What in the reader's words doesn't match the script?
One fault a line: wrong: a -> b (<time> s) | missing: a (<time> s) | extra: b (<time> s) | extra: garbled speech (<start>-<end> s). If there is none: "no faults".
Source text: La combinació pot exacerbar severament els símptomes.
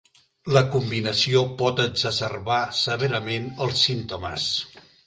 no faults